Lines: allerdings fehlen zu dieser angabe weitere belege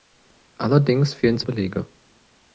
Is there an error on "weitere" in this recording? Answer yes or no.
yes